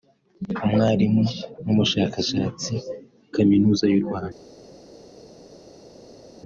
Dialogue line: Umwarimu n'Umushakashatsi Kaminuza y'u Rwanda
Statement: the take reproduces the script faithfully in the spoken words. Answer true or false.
true